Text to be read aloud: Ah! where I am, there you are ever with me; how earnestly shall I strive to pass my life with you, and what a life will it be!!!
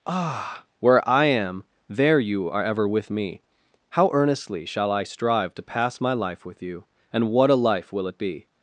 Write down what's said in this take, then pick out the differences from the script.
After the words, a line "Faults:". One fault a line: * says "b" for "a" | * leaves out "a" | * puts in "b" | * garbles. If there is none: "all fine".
Ah! where I am, there you are ever with me; how earnestly shall I strive to pass my life with you, and what a life will it be!!!
Faults:
all fine